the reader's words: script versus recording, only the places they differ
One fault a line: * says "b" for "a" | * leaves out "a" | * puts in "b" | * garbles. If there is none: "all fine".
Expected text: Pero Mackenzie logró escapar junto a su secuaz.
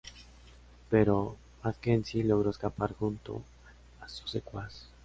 all fine